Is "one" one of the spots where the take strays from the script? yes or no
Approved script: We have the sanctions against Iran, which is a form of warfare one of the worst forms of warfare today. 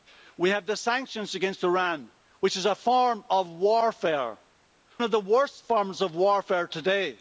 yes